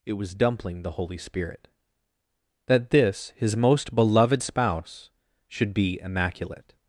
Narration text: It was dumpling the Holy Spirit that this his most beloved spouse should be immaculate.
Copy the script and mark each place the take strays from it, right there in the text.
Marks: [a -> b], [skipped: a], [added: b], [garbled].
It was dumpling the Holy Spirit that this his most beloved spouse should be immaculate.